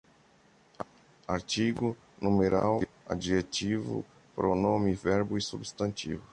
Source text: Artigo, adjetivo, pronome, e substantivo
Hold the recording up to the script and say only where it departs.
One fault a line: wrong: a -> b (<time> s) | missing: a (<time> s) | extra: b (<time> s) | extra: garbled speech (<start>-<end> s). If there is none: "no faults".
extra: numeral (2.2 s)
extra: verbo (4.9 s)